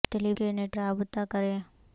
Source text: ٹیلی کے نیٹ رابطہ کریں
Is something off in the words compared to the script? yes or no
no